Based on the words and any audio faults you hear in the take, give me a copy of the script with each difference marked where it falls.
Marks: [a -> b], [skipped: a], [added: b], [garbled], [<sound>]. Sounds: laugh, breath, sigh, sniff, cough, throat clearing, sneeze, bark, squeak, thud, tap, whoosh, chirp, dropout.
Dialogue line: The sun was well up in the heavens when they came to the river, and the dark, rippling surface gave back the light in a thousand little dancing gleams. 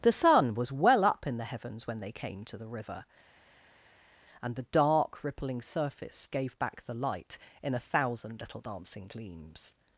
The sun was well up in the heavens when they came to the river, and the dark, rippling surface gave back the light in a thousand little dancing gleams.